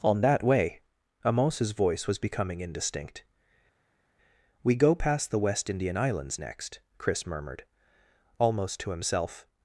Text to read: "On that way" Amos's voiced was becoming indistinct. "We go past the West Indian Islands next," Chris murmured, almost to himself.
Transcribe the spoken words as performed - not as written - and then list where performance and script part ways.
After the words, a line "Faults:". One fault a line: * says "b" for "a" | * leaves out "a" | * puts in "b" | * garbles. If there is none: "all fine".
"On that way" Amos's voice was becoming indistinct. "We go past the West Indian Islands next," Chris murmured, almost to himself.
Faults:
* says "voice" for "voiced"